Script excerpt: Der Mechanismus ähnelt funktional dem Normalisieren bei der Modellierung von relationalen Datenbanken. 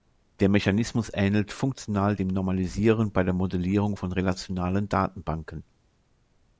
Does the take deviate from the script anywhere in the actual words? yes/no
no